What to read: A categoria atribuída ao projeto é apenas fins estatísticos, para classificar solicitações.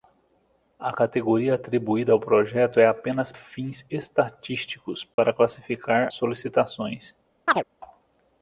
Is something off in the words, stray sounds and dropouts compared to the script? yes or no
yes